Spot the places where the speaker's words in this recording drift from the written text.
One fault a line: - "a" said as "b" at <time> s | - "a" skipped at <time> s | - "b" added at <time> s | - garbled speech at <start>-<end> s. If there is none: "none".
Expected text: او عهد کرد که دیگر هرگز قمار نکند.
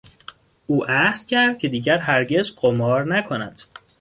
none